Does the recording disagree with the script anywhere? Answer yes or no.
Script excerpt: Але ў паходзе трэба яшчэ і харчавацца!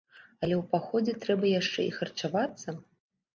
no